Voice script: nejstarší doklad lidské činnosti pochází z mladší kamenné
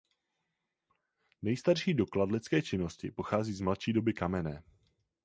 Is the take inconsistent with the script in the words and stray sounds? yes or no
yes